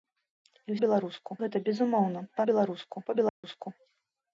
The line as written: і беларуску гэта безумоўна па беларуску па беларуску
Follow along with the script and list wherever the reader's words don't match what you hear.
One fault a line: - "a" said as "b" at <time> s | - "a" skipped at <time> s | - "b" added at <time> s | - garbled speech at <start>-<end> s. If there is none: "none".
none